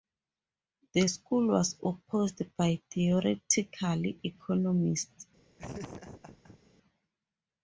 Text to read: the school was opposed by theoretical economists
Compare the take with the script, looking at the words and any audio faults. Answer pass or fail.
fail